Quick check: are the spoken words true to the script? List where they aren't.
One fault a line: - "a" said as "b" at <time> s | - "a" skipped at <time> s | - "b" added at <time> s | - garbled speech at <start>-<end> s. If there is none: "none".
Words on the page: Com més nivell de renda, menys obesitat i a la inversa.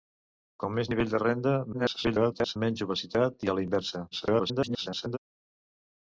- garbled speech at 1.7-2.6 s
- garbled speech at 4.1-5.2 s